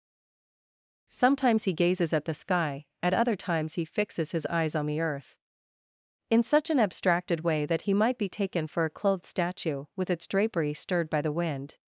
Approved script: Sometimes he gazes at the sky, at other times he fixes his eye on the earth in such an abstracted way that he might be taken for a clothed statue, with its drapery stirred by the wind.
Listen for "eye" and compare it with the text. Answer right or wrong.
wrong